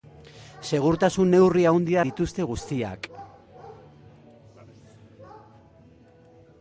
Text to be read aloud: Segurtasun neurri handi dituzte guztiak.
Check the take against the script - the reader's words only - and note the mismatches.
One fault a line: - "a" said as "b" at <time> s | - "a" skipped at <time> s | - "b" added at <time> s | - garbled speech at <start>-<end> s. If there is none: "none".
none